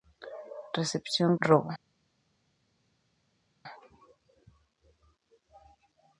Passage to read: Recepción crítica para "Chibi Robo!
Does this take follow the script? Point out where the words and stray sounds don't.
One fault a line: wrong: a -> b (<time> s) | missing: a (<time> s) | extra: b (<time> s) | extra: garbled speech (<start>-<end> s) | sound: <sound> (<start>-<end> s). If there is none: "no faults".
missing: crítica para Chibi (1.4 s)